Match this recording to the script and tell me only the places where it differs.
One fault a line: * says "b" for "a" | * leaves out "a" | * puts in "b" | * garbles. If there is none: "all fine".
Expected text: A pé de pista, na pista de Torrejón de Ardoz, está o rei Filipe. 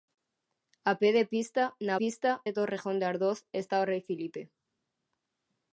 all fine